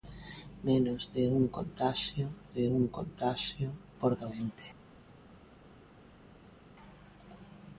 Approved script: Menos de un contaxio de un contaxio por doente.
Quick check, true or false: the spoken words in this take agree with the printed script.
true